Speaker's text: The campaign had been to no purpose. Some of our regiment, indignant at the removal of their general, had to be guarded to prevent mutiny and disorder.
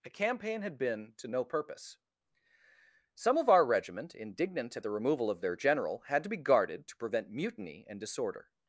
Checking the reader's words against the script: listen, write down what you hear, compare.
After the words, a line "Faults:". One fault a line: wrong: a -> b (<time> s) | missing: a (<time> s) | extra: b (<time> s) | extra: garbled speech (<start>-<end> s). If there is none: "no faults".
The campaign had been to no purpose. Some of our regiment, indignant at the removal of their general, had to be guarded to prevent mutiny and disorder.
Faults:
no faults